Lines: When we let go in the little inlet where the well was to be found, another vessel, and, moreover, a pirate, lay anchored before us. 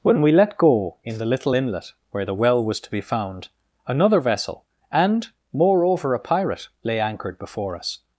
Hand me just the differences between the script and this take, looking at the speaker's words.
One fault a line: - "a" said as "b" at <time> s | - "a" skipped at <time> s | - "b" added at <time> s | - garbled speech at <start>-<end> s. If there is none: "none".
none